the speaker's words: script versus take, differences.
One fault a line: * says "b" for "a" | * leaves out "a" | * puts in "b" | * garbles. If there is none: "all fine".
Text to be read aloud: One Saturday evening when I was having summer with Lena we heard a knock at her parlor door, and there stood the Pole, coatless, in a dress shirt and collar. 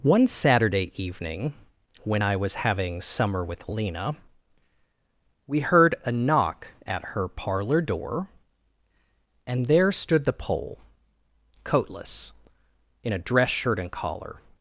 all fine